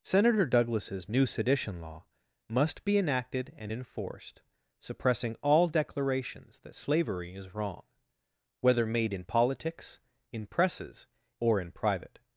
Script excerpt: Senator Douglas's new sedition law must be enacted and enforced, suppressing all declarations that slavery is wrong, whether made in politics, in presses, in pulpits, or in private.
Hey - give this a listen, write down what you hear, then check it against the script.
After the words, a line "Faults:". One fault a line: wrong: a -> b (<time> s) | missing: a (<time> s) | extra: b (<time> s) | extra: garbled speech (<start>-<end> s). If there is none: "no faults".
Senator Douglas's new sedition law must be enacted and enforced, suppressing all declarations that slavery is wrong, whether made in politics, in presses, or in private.
Faults:
missing: in pulpits (11.1 s)